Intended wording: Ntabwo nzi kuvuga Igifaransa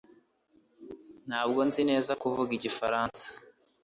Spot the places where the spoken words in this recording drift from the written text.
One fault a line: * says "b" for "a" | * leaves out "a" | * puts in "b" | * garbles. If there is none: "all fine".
* puts in "neza"